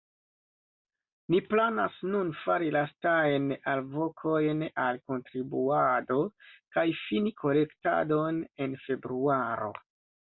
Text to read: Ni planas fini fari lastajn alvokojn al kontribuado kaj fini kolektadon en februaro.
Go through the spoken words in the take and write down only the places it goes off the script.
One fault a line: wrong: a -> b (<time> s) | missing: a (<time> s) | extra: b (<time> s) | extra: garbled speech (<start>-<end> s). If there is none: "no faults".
wrong: fini -> nun (2.1 s)